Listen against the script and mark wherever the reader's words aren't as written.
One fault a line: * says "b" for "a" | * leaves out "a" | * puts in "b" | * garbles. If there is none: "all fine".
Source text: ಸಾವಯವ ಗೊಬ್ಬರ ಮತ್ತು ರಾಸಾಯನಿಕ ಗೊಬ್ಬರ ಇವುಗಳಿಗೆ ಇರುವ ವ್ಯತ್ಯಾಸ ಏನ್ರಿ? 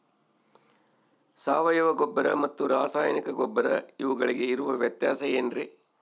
all fine